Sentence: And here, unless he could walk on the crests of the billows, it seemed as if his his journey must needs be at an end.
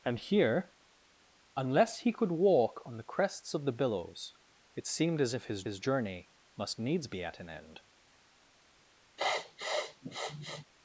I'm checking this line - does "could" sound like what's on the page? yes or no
yes